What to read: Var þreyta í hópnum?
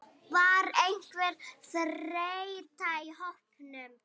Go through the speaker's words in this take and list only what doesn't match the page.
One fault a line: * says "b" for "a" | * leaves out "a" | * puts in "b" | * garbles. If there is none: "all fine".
* puts in "einhver"